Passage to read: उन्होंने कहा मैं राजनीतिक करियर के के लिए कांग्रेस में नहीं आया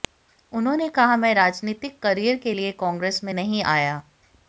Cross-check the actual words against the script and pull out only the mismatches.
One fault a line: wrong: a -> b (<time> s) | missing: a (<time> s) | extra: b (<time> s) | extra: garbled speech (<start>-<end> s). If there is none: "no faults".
missing: के (2.5 s)